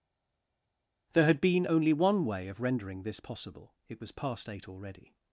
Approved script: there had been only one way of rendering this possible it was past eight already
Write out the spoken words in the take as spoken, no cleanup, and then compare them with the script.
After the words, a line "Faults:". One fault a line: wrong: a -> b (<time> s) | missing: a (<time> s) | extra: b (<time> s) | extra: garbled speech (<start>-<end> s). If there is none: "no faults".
there had been only one way of rendering this possible it was past eight already
Faults:
no faults